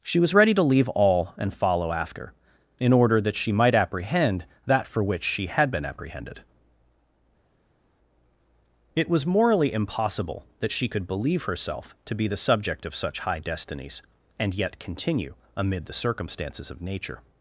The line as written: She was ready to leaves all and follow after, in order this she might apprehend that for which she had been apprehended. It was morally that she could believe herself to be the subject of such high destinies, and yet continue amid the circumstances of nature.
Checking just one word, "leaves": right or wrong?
wrong